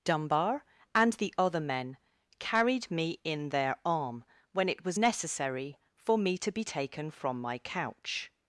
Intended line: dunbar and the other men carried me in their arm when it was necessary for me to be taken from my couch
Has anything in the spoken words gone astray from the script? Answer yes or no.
no